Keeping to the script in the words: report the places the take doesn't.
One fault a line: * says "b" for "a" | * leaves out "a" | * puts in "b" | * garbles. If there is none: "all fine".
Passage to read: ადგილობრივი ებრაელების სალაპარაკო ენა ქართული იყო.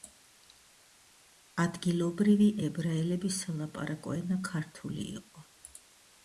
all fine